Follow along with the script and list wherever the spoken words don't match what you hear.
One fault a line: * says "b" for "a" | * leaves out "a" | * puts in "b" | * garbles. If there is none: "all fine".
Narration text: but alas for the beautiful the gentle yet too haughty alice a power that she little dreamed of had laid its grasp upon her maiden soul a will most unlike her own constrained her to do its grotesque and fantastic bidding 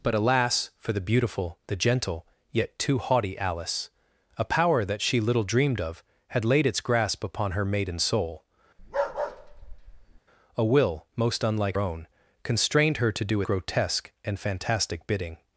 * leaves out "her"
* leaves out "its"